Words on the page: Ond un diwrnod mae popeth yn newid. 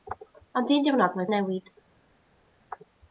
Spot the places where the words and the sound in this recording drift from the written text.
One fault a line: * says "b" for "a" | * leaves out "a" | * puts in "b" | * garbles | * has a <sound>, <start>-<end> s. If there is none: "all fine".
* leaves out "popeth"